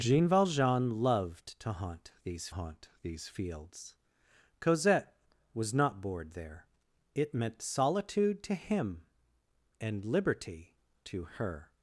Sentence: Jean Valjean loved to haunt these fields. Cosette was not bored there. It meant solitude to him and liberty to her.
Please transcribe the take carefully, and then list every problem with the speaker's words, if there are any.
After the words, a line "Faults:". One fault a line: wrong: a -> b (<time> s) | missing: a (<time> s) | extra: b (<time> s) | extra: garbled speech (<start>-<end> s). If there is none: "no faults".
Jean Valjean loved to haunt these haunt these fields. Cosette was not bored there. It meant solitude to him and liberty to her.
Faults:
extra: haunt these (2.5 s)